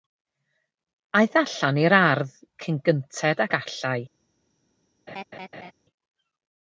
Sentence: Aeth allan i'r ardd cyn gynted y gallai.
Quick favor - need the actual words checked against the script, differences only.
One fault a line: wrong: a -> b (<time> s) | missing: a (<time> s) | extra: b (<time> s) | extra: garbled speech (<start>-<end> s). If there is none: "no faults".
no faults